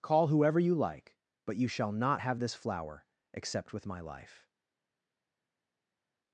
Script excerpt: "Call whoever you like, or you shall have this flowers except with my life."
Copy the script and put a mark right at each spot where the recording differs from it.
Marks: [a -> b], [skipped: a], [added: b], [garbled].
"Call whoever you like, [or -> but] you shall [added: not] have this [flowers -> flower] except with my life."